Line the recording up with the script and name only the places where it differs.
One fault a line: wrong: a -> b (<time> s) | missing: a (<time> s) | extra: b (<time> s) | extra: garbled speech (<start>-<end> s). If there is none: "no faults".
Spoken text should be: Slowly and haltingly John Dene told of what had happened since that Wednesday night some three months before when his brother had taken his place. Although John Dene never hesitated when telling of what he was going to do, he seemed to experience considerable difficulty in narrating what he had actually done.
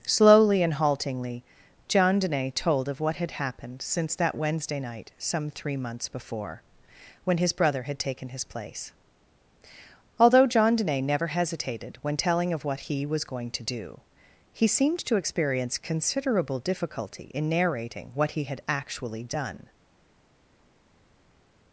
no faults